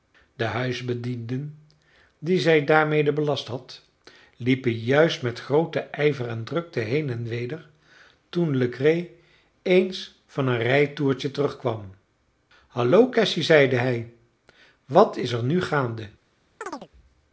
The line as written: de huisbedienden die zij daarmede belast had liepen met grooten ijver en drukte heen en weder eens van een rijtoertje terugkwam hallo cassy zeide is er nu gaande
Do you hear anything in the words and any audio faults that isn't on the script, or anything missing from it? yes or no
yes